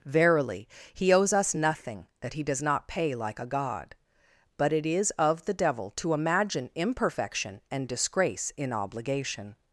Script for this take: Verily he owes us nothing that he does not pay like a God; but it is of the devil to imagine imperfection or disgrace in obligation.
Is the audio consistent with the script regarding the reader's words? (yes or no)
no